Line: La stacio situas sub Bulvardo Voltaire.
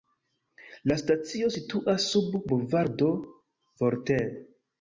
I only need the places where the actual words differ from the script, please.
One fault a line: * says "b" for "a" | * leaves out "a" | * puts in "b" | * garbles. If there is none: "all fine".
all fine